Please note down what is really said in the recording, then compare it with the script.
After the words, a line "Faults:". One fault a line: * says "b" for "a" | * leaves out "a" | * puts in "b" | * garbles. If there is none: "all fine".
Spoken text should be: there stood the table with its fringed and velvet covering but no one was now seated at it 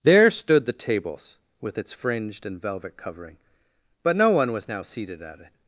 there stood the tables with its fringed and velvet covering but no one was now seated at it
Faults:
* says "tables" for "table"